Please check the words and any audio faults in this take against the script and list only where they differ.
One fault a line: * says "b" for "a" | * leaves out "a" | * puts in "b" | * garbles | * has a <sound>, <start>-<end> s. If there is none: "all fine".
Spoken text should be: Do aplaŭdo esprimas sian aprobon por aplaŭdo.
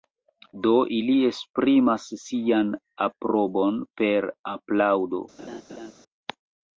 * says "ili" for "aplaŭdo"
* says "per" for "por"
* has a laugh, 5.4-5.9 s